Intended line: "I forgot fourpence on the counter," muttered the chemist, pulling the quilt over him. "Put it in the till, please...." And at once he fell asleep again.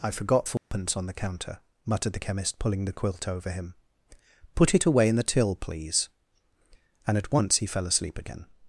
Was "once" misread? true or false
false